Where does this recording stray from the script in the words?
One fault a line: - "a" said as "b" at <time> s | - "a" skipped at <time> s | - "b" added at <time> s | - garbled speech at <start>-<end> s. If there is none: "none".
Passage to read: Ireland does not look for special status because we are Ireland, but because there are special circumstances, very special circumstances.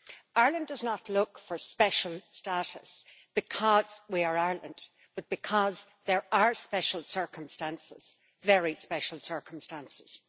none